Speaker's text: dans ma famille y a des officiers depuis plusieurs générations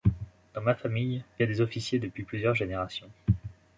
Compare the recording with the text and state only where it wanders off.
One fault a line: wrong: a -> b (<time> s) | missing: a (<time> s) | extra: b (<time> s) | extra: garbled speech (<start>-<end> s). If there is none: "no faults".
no faults